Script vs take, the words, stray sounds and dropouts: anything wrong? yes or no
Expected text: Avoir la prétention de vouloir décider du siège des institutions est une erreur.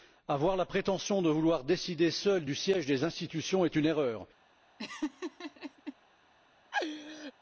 yes